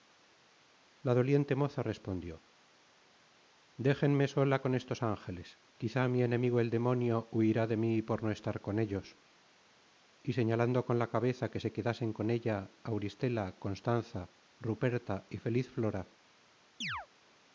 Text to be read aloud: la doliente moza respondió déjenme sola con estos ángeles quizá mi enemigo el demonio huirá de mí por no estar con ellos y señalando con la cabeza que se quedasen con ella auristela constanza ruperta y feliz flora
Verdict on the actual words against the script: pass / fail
pass